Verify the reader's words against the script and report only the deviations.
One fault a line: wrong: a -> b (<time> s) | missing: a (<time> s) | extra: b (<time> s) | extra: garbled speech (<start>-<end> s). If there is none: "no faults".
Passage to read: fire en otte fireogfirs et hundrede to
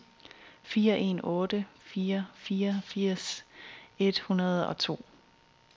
extra: fire (1.8 s)
extra: og (4.7 s)